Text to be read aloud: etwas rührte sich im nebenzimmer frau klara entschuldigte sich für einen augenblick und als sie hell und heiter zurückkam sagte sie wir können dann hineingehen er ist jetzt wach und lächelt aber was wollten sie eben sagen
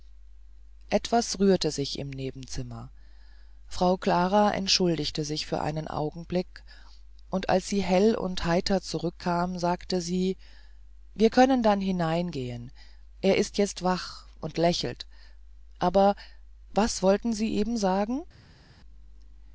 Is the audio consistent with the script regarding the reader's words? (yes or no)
yes